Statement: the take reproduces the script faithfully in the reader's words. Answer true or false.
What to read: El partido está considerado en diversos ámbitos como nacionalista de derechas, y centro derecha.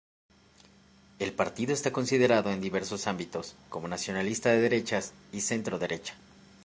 true